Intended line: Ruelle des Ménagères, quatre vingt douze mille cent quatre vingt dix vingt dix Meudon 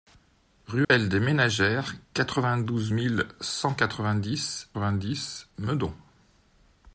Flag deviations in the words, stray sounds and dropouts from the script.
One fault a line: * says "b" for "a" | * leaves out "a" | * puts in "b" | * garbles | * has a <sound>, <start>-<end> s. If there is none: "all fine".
* has a dropout, 0.8-0.9 s